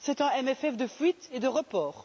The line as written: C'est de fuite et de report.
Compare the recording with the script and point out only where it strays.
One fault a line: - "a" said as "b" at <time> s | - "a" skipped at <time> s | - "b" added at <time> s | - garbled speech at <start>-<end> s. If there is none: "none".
- "un CFP" added at 0.2 s